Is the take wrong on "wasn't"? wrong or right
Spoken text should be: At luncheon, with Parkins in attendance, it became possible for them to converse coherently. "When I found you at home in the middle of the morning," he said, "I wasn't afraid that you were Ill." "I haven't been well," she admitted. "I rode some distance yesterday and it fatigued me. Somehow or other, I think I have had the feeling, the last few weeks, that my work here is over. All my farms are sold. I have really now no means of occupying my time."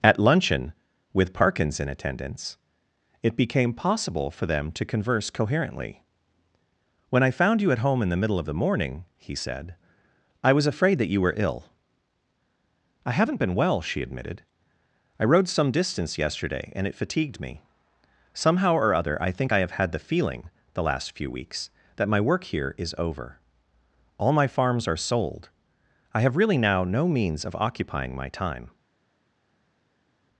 wrong